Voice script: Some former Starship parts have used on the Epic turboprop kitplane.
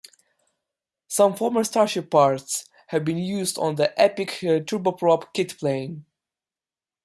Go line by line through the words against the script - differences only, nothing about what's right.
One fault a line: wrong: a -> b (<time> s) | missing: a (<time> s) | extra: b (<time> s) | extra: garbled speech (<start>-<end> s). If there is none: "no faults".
extra: been (3.0 s)